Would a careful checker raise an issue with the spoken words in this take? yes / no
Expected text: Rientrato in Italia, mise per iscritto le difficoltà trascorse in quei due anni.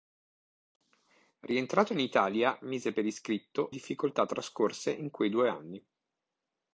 yes